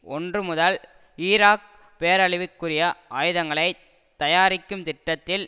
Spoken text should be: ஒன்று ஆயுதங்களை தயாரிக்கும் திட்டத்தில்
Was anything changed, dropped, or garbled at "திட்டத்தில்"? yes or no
no